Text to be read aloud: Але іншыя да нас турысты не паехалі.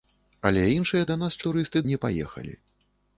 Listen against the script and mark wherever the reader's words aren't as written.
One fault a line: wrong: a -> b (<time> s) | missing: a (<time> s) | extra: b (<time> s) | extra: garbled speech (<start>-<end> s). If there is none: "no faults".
no faults